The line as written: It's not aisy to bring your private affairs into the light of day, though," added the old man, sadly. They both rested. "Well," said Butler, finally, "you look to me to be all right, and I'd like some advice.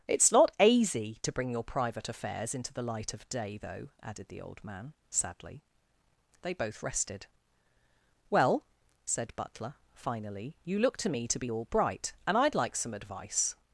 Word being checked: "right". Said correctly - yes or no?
no